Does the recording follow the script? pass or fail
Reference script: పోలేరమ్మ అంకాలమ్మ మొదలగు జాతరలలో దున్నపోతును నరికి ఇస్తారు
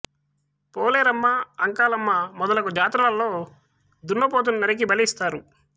fail